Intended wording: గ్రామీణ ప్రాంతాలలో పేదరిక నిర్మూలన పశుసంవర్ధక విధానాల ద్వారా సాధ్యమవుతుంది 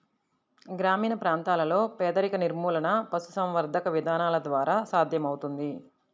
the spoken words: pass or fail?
pass